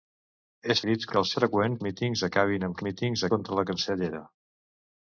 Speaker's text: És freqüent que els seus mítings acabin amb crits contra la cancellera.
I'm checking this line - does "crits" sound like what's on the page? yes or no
no